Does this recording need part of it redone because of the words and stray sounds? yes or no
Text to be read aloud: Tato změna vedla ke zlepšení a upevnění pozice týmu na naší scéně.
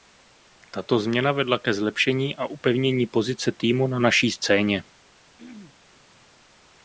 yes